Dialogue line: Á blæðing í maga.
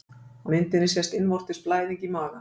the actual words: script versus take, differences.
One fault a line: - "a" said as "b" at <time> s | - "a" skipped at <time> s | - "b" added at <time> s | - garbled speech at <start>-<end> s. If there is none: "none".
- "myndinni sést innvortis" added at 0.5 s